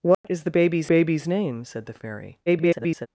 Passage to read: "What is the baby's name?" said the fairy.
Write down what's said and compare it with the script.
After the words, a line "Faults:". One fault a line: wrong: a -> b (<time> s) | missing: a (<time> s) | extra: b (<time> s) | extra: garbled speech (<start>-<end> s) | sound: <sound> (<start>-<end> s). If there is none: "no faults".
"What is the baby's baby's name?" said the fairy. [garbled]
Faults:
sound: dropout (0.1-0.2 s)
extra: baby's (0.9 s)
extra: garbled speech (2.5-3.1 s)